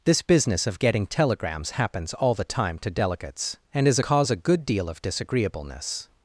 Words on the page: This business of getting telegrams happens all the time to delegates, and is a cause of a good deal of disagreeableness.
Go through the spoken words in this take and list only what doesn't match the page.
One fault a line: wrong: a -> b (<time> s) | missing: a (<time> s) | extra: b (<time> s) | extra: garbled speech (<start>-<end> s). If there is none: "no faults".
missing: of (4.3 s)